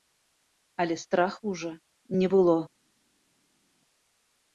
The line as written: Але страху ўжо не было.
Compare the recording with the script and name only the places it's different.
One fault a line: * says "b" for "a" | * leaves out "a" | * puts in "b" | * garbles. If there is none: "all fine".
all fine